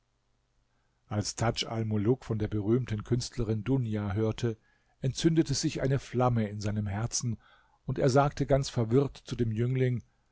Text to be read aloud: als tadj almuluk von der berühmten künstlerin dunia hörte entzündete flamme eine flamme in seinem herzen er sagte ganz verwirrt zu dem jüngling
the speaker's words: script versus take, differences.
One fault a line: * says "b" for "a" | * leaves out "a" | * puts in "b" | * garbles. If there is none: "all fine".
* says "sich" for "flamme"
* puts in "und"